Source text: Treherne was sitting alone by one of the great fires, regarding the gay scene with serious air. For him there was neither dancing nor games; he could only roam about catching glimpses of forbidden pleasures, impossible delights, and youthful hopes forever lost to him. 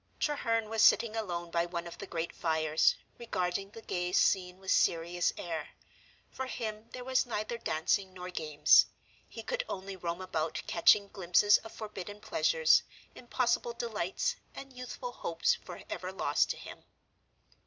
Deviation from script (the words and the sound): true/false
false